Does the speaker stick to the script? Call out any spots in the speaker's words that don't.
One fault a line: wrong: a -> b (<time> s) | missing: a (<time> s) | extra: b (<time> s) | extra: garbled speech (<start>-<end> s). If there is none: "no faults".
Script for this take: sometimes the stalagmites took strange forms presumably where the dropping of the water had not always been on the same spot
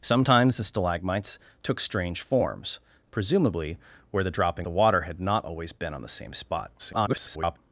missing: of (4.7 s)
extra: garbled speech (6.8-7.6 s)